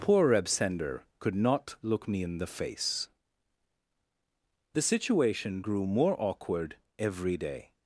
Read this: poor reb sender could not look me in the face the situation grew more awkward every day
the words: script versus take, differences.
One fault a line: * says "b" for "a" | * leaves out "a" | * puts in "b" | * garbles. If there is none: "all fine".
all fine